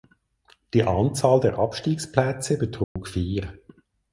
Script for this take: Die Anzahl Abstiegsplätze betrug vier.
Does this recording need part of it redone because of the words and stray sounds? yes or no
yes